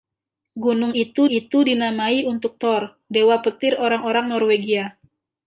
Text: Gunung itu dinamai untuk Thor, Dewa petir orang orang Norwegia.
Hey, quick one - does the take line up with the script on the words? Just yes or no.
no